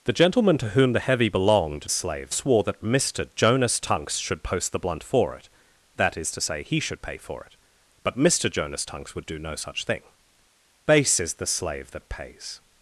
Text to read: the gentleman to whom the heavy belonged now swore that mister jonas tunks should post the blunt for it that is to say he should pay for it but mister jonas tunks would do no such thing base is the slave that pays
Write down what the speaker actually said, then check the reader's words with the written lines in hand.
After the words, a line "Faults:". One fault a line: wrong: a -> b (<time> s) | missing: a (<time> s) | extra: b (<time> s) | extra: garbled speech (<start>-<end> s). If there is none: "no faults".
the gentleman to whom the heavy belonged slave swore that mister jonas tunks should post the blunt for it that is to say he should pay for it but mister jonas tunks would do no such thing base is the slave that pays
Faults:
wrong: now -> slave (1.9 s)